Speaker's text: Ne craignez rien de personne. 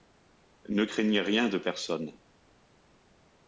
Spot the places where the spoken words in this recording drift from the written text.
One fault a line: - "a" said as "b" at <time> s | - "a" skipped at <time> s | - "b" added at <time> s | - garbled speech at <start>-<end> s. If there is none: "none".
none